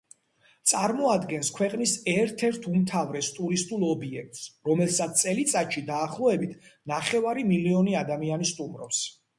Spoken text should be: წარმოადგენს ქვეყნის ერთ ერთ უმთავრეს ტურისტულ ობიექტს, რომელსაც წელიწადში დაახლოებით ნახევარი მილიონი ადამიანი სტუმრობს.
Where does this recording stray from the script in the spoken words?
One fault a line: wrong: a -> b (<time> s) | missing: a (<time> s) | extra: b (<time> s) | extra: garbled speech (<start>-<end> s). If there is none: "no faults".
no faults